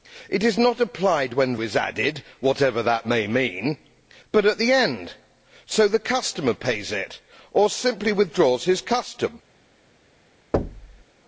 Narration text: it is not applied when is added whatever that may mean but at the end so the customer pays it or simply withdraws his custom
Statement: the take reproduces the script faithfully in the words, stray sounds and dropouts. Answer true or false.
false